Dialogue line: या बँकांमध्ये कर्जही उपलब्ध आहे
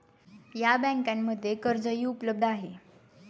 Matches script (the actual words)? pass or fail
pass